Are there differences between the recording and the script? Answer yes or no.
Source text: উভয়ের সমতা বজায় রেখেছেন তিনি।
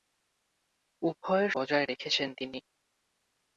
yes